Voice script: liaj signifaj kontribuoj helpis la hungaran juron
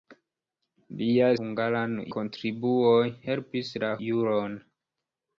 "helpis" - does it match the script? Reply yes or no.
yes